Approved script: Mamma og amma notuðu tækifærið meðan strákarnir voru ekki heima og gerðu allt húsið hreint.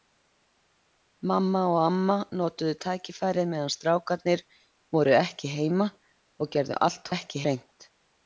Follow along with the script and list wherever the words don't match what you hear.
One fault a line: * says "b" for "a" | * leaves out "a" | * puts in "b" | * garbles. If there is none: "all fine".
* says "ekki" for "húsið"